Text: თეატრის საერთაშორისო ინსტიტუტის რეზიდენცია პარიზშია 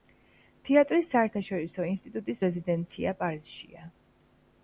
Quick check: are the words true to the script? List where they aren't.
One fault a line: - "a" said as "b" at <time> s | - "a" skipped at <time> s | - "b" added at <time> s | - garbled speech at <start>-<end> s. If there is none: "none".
none